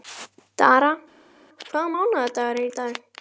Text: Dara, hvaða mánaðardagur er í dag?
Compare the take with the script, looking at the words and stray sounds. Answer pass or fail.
pass